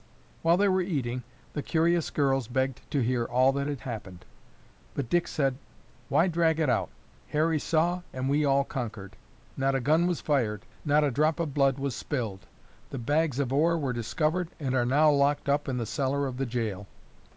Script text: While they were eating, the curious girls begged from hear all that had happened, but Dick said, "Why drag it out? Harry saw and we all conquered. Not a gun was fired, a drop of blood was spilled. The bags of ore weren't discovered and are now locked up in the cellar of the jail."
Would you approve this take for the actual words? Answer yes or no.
no